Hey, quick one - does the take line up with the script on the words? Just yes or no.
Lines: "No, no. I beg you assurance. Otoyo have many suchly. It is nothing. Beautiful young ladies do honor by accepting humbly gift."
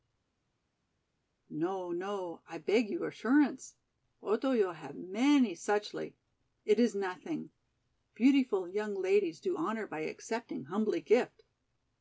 yes